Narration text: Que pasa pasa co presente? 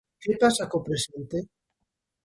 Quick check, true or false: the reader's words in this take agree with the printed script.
false